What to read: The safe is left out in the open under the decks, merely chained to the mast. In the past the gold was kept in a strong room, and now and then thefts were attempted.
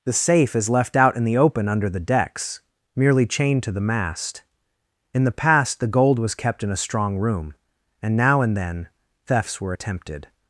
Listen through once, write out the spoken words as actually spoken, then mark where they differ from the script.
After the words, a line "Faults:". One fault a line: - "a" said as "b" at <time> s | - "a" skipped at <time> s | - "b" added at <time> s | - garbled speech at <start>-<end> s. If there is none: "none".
The safe is left out in the open under the decks, merely chained to the mast. In the past the gold was kept in a strong room, and now and then thefts were attempted.
Faults:
none